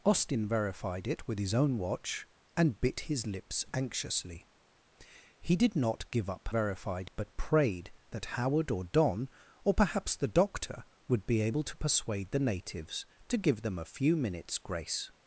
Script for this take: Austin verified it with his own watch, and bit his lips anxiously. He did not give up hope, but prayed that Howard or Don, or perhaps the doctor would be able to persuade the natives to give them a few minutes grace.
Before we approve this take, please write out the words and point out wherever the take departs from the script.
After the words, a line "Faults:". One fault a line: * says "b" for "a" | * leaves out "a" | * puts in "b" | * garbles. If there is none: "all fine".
Austin verified it with his own watch, and bit his lips anxiously. He did not give up verified, but prayed that Howard or Don, or perhaps the doctor would be able to persuade the natives to give them a few minutes grace.
Faults:
* says "verified" for "hope"